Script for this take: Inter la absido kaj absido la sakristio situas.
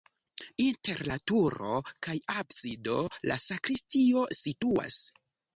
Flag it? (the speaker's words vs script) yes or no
yes